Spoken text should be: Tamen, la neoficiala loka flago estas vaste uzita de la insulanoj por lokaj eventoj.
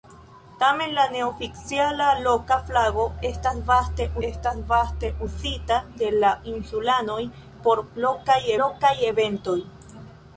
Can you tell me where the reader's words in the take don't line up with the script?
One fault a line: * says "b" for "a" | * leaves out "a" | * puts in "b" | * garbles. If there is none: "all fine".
* puts in "estas vaste"
* puts in "lokaj"